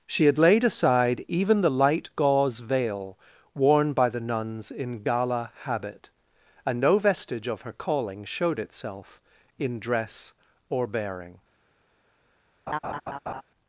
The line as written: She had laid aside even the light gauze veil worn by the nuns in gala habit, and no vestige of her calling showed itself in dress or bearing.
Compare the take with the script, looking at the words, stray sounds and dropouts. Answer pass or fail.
fail